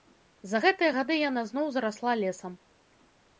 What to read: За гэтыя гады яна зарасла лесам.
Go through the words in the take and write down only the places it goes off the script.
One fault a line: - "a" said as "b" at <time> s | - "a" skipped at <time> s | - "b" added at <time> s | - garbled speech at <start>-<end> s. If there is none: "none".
- "зноў" added at 1.5 s